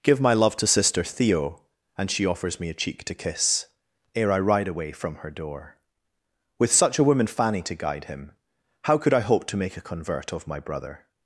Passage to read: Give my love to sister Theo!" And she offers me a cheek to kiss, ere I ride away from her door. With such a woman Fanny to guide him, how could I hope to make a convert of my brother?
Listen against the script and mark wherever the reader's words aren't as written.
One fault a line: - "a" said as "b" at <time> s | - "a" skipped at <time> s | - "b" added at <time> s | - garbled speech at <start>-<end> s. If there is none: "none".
none